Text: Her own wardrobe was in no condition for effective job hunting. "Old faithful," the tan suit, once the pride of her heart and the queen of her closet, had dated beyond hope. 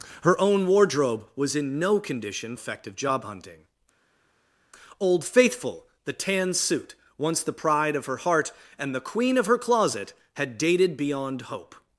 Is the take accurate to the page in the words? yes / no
no